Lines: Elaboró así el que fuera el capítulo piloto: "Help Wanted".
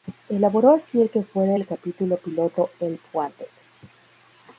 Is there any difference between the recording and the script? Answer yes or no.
no